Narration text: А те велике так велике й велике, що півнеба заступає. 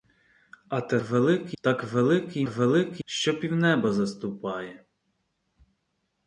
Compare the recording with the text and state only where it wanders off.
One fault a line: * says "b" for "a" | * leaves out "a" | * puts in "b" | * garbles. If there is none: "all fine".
all fine